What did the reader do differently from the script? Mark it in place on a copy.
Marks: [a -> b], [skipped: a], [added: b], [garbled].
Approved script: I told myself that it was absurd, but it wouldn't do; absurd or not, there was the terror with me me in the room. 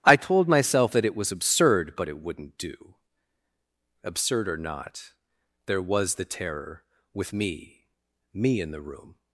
I told myself that it was absurd, but it wouldn't do; absurd or not, there was the terror with me me in the room.